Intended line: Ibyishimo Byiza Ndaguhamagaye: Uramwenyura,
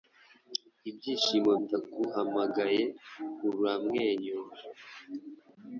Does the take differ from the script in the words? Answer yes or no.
yes